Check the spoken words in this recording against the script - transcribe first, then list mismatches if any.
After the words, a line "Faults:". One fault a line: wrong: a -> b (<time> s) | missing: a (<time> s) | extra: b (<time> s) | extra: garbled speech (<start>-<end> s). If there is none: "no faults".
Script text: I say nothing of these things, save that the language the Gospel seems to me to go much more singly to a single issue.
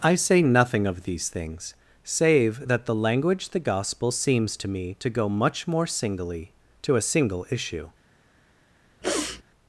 I say nothing of these things, save that the language the Gospel seems to me to go much more singly to a single issue.
Faults:
no faults